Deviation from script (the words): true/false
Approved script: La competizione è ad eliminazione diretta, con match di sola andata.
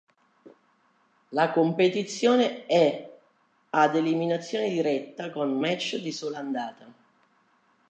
false